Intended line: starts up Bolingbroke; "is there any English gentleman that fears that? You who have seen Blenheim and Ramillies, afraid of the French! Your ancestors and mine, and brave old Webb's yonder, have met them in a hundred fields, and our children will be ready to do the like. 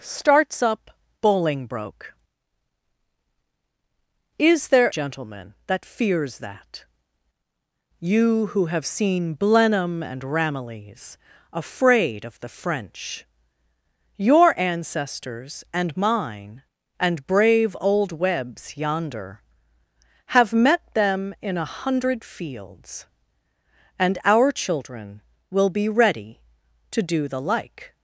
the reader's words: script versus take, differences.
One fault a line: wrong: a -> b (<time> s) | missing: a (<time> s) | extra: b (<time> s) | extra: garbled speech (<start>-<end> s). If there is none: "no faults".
missing: any English (4.9 s)